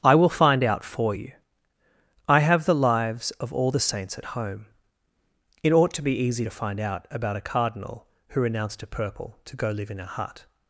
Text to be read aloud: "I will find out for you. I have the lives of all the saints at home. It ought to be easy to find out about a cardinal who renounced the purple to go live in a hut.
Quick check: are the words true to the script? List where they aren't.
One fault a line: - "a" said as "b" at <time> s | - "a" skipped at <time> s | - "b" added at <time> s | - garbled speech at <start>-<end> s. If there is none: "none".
- "the" said as "a" at 8.8 s